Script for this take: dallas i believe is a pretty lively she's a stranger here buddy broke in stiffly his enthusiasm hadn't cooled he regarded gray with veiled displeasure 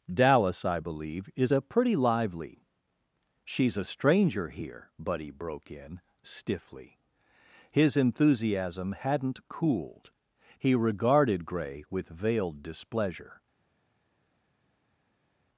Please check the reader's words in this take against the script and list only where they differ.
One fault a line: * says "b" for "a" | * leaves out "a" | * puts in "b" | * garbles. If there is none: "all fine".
all fine